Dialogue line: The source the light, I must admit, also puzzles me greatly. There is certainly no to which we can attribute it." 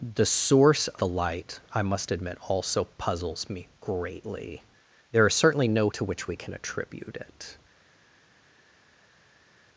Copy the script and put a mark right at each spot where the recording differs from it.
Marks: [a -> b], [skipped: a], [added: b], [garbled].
The source the light, I must admit, also puzzles me greatly. There is certainly no to which we can attribute it."